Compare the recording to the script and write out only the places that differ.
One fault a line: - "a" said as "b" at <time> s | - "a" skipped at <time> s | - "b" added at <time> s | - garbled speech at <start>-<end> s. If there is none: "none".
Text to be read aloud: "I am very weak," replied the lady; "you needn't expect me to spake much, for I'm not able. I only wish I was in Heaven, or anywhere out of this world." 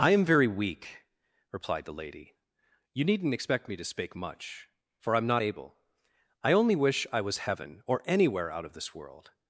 - "in" skipped at 7.4 s